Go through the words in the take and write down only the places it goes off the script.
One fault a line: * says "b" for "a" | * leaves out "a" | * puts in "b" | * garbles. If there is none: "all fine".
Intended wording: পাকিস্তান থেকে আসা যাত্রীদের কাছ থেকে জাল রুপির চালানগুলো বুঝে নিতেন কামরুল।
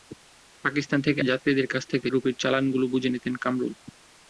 * leaves out "আসা"
* leaves out "জাল"